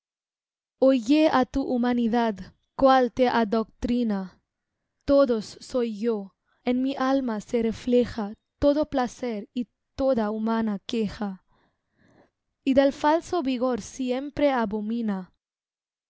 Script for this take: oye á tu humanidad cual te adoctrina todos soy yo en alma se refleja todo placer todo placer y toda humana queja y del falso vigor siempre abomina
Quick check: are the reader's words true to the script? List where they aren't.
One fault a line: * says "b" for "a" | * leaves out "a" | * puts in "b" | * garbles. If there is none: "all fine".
* puts in "mi"
* leaves out "todo placer"